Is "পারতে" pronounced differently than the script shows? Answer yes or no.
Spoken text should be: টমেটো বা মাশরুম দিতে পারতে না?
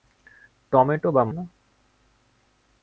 yes